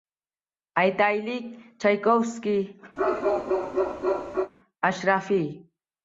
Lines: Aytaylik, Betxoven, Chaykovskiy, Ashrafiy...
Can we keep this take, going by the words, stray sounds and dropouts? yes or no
no